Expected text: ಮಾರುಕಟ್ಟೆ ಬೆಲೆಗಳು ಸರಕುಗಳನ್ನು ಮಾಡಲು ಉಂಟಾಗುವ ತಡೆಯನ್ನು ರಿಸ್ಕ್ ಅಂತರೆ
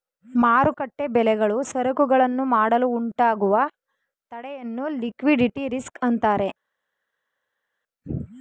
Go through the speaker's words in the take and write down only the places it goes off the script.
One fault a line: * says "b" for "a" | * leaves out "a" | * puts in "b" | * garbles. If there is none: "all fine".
* puts in "ಲಿಕ್ವಿಡಿಟಿ"